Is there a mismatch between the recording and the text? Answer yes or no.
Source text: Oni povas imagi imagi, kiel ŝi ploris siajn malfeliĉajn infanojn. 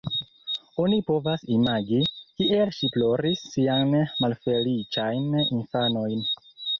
yes